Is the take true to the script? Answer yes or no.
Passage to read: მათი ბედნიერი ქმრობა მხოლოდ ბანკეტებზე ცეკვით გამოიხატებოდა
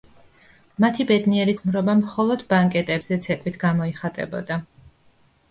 yes